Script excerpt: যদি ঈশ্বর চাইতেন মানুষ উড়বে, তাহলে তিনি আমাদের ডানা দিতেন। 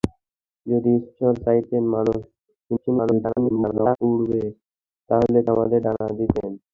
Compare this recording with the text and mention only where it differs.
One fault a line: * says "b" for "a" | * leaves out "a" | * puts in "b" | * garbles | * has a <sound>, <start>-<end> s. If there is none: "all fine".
* garbles
* leaves out "তিনি"